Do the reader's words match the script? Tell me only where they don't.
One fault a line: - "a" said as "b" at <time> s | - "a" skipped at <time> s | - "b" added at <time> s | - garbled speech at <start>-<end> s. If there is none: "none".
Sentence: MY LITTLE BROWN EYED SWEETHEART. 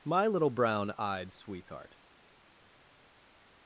none